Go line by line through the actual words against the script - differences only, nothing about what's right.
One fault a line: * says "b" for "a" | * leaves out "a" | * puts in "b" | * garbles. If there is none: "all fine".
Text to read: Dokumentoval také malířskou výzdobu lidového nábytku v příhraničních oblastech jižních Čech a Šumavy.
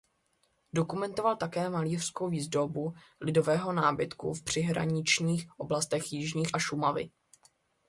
* leaves out "Čech"